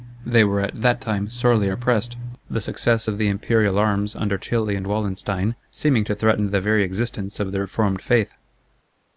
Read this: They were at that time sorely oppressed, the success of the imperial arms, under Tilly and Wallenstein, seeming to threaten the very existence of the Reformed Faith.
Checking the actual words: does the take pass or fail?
pass